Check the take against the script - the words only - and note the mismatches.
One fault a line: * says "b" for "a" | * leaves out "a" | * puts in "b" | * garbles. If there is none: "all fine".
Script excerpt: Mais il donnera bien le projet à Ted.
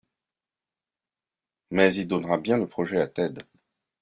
all fine